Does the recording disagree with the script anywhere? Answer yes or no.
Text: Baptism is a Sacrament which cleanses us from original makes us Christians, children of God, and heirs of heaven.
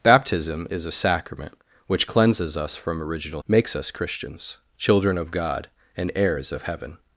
no